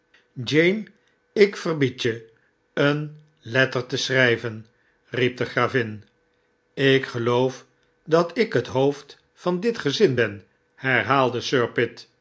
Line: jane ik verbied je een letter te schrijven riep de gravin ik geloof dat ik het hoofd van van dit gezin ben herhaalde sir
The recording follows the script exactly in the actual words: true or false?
false